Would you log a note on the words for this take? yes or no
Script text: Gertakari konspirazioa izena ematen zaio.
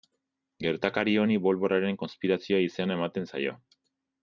yes